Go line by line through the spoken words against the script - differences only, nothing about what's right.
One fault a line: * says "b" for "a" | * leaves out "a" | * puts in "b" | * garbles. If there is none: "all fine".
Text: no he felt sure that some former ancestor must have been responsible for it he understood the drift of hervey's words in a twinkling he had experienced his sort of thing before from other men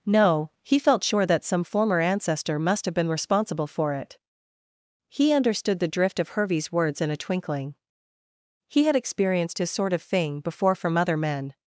all fine